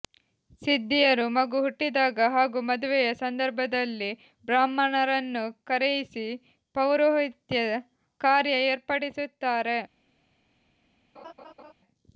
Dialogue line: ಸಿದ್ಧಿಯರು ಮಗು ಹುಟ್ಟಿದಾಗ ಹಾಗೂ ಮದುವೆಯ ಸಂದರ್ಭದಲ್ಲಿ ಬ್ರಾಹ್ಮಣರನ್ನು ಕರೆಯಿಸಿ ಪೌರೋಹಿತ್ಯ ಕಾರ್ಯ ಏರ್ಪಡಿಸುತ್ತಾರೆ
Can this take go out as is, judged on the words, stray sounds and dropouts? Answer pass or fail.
fail